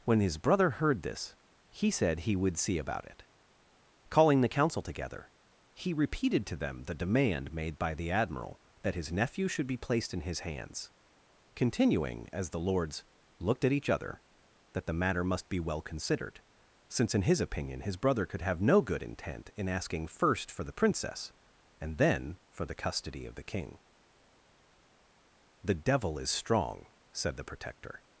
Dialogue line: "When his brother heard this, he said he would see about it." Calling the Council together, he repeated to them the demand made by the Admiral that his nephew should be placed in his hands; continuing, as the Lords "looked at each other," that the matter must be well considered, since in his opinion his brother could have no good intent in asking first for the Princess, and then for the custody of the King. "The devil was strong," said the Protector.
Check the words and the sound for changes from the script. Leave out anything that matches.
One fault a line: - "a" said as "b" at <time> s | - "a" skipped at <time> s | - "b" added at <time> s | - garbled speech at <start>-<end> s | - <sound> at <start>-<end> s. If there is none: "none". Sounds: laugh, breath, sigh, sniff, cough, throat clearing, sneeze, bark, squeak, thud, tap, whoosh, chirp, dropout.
- "was" said as "is" at 26.2 s